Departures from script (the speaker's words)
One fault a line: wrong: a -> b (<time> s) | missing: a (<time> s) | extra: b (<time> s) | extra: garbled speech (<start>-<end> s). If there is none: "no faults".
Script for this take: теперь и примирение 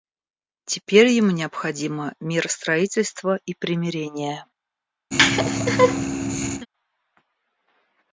extra: ему необходимо миростроительство (1.1 s)